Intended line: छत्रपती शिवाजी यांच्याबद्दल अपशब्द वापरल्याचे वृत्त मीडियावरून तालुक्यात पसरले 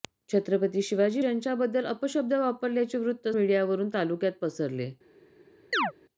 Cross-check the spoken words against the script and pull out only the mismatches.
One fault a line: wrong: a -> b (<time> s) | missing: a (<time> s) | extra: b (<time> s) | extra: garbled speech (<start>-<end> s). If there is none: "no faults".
no faults